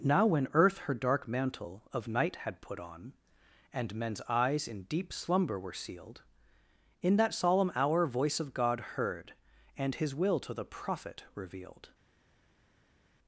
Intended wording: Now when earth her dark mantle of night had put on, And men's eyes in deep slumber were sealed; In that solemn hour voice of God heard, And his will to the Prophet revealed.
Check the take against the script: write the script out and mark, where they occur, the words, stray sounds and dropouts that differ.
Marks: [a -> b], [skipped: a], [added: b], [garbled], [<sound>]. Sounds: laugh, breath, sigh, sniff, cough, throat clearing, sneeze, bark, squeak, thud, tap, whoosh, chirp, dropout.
Now when earth her dark mantle of night had put on, And men's eyes in deep slumber were sealed; In that solemn hour voice of God heard, And his will to the Prophet revealed.